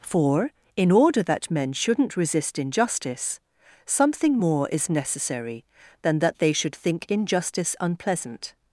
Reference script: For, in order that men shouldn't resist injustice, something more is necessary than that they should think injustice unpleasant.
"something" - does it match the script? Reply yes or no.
yes